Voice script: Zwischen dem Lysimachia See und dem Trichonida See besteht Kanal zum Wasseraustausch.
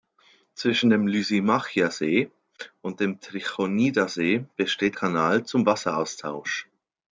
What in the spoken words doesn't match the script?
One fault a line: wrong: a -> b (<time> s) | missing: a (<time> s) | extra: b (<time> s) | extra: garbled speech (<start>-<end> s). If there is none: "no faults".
no faults